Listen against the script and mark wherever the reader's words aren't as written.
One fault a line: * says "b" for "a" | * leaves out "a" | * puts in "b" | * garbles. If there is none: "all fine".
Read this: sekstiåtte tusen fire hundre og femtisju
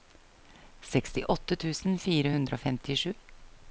all fine